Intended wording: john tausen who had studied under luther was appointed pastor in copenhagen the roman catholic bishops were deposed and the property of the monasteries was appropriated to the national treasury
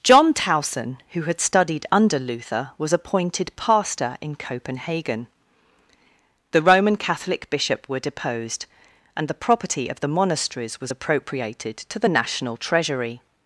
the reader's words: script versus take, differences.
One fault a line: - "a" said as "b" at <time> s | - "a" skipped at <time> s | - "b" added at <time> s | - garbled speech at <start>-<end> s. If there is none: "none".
- "bishops" said as "bishop" at 7.5 s